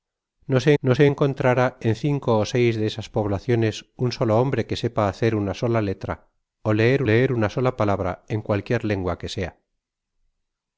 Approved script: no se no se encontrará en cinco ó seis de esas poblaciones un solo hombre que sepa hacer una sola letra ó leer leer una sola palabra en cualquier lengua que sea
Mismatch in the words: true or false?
false